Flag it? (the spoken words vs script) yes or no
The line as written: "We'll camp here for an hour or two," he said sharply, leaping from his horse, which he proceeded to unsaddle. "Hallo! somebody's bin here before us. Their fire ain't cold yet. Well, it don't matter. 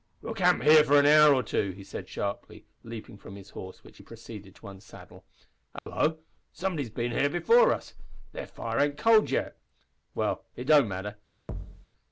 no